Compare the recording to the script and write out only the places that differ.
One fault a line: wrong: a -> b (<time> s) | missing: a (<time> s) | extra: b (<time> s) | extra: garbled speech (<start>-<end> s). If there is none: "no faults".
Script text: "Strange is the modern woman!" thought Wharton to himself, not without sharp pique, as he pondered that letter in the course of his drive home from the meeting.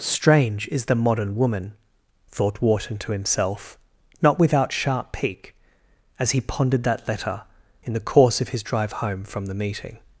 no faults